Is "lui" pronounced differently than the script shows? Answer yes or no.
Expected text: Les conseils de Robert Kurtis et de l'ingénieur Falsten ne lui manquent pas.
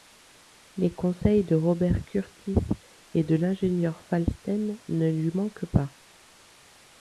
no